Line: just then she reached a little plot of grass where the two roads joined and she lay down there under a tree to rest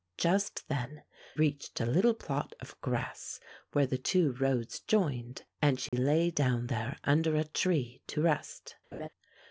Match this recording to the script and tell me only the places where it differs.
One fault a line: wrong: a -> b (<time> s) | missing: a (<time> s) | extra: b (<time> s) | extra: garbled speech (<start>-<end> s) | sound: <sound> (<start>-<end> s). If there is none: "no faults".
missing: she (1.0 s)
sound: dropout (5.9-5.9 s)
sound: laugh (8.9-9.1 s)